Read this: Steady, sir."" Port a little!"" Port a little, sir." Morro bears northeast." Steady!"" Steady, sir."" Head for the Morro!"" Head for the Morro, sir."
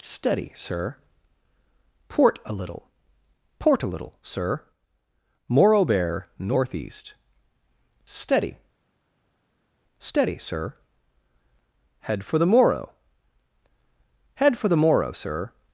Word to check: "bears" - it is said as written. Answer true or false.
false